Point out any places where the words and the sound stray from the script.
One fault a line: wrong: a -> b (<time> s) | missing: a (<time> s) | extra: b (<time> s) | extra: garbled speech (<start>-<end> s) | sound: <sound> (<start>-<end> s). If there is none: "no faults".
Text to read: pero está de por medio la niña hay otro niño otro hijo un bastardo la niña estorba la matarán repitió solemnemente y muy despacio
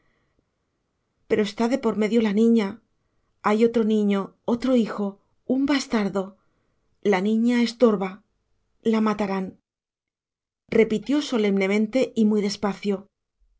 no faults